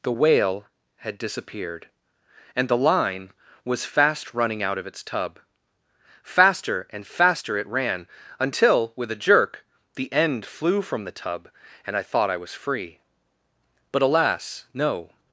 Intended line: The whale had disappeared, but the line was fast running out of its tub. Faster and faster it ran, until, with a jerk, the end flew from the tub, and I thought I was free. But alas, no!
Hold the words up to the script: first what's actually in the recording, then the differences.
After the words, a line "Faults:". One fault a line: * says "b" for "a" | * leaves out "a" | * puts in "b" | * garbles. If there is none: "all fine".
The whale had disappeared, and the line was fast running out of its tub. Faster and faster it ran, until, with a jerk, the end flew from the tub, and I thought I was free. But alas, no!
Faults:
* says "and" for "but"